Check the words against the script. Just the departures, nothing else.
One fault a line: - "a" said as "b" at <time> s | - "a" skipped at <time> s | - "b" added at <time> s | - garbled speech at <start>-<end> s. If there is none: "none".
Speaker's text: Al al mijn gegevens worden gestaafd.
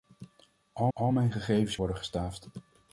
none